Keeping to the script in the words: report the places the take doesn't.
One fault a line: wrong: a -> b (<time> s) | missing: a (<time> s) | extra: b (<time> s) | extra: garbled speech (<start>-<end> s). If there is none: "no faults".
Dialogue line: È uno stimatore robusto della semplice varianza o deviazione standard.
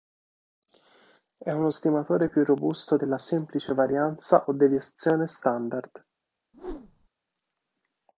extra: più (2.3 s)